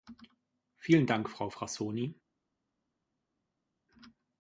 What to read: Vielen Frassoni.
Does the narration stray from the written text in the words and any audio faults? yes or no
yes